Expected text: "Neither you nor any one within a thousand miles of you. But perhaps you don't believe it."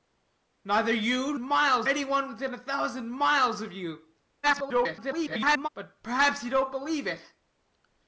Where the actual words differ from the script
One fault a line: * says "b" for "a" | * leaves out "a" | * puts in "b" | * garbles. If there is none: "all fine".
* says "miles" for "nor"
* garbles